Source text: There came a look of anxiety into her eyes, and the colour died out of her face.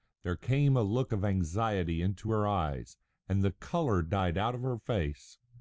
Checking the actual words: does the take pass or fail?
pass